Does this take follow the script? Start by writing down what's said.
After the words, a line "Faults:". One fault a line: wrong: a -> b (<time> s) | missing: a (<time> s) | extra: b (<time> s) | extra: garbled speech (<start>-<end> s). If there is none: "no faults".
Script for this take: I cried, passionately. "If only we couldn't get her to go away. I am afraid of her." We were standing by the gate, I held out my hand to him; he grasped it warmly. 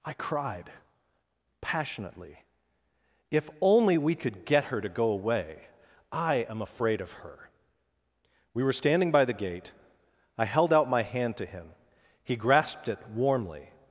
I cried, passionately. "If only we could get her to go away. I am afraid of her." We were standing by the gate, I held out my hand to him; he grasped it warmly.
Faults:
wrong: couldn't -> could (4.2 s)